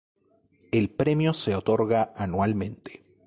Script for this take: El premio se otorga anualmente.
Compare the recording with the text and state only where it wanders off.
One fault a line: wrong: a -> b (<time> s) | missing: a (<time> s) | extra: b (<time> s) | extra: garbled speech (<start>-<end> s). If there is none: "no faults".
no faults